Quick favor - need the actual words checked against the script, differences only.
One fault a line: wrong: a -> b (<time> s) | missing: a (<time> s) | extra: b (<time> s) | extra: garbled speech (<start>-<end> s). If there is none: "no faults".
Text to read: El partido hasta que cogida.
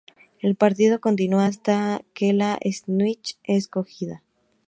extra: continúa (1.0 s)
extra: la snitch es (2.3 s)